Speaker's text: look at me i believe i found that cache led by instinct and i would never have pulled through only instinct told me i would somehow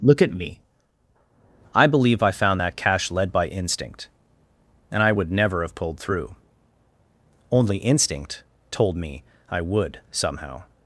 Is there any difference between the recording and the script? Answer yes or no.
no